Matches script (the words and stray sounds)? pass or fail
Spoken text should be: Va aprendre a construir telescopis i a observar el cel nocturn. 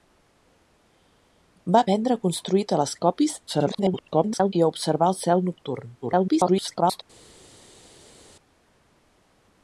fail